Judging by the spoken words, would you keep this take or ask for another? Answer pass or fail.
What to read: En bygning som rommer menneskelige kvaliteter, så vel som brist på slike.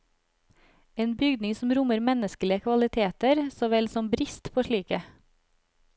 pass